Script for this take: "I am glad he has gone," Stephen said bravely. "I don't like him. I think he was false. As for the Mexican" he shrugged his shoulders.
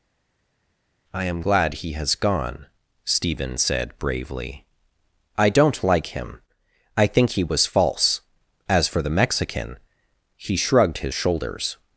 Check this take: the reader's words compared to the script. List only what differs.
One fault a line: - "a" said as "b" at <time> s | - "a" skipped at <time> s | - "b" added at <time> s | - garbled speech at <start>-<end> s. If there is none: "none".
none